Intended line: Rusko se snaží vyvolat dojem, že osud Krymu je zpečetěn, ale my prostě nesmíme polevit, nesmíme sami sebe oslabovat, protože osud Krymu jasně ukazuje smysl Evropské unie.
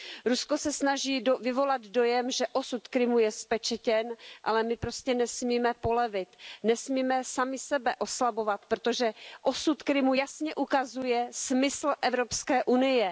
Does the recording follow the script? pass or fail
pass